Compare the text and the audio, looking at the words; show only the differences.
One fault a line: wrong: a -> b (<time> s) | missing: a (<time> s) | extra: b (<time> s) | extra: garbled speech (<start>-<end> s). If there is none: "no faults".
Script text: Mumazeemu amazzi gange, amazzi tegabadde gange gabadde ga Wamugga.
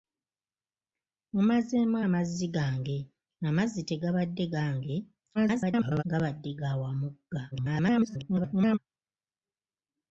extra: garbled speech (5.3-6.0 s)
extra: garbled speech (7.5-8.8 s)